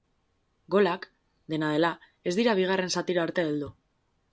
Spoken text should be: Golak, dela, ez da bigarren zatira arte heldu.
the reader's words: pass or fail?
fail